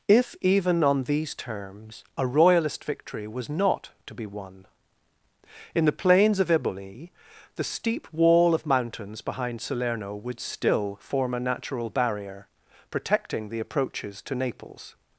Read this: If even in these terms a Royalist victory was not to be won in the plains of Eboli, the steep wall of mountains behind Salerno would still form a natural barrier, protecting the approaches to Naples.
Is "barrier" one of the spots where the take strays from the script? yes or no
no